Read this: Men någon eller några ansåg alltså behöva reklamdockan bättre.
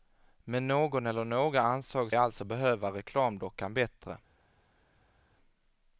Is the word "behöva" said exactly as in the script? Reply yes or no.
yes